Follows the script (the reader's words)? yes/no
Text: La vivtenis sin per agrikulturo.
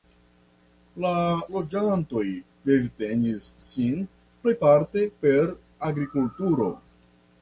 no